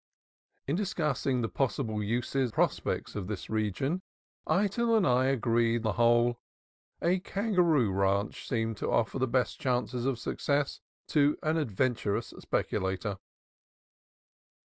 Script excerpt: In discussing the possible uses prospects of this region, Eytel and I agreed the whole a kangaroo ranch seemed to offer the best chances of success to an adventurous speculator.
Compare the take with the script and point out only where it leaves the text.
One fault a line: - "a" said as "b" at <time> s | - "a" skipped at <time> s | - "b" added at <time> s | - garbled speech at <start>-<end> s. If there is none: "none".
none